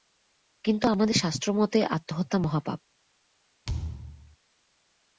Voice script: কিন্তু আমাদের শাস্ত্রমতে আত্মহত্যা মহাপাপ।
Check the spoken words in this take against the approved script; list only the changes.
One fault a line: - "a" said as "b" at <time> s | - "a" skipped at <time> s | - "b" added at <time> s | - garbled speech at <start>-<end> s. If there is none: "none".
none